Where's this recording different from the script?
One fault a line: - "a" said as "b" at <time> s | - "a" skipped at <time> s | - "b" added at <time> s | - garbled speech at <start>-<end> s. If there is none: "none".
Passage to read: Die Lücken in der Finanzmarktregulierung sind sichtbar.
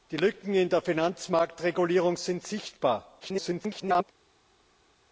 - garbled speech at 3.2-4.0 s